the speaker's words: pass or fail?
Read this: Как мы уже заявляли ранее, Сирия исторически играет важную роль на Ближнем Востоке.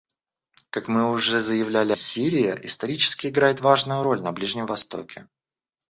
fail